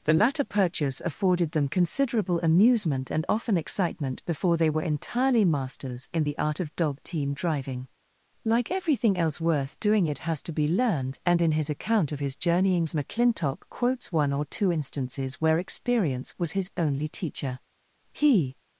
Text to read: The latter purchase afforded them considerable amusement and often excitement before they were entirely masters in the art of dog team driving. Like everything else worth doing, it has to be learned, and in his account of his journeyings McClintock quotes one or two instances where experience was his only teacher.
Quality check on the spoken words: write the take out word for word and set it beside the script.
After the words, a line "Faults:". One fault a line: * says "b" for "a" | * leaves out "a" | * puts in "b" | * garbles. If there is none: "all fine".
The latter purchase afforded them considerable amusement and often excitement before they were entirely masters in the art of dog team driving. Like everything else worth doing, it has to be learned, and in his account of his journeyings McClintock quotes one or two instances where experience was his only teacher. He
Faults:
* puts in "He"